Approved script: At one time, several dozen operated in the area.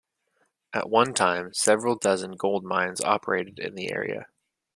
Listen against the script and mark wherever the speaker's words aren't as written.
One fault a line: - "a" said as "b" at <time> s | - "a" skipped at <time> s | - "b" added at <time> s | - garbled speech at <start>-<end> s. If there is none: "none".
- "gold mines" added at 2.4 s